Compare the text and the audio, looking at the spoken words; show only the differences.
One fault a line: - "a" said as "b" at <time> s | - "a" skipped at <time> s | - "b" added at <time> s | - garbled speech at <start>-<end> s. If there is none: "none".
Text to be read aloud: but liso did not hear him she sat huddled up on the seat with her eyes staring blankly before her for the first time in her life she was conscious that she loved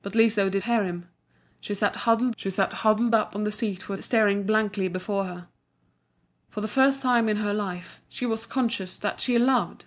- "not" skipped at 0.6 s
- "she sat huddled" added at 2.4 s
- "her eyes" skipped at 4.0 s